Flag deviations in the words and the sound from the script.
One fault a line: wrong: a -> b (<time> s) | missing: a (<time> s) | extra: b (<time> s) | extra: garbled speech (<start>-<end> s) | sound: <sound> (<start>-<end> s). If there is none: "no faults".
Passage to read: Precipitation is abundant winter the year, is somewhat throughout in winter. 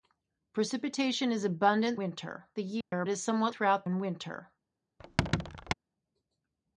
sound: dropout (2.8-2.9 s)
sound: squeak (5.0-5.7 s)